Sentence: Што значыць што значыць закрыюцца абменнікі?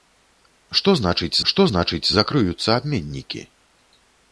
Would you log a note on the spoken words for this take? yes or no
no